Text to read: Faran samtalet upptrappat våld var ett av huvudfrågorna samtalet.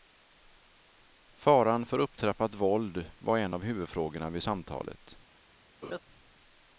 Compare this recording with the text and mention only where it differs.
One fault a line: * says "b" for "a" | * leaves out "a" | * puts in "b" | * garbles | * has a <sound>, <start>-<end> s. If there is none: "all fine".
* says "för" for "samtalet"
* says "en" for "ett"
* puts in "vid"
* has a laugh, 5.8-6.0 s